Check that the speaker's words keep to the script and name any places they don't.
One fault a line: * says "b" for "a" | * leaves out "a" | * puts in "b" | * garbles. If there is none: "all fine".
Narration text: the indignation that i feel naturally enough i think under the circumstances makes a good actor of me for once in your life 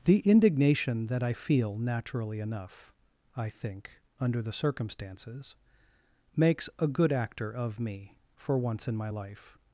* says "my" for "your"